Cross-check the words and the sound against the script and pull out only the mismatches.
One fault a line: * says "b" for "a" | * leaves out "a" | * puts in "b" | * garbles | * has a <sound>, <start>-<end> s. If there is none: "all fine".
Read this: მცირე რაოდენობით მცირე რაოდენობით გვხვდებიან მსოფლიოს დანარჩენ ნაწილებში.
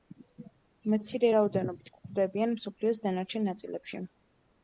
* leaves out "მცირე რაოდენობით"